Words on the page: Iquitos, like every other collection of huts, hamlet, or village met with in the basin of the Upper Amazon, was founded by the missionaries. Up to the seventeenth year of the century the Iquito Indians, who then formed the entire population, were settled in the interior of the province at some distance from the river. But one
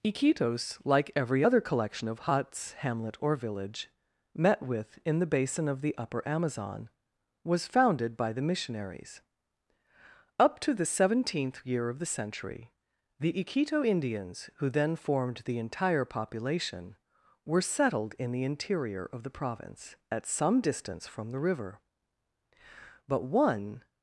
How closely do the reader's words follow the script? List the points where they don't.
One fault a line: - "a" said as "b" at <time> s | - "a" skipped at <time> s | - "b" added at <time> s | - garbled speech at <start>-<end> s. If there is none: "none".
none